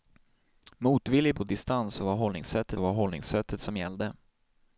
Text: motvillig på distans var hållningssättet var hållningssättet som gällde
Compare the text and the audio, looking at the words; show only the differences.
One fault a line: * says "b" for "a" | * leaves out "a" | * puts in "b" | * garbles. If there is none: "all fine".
all fine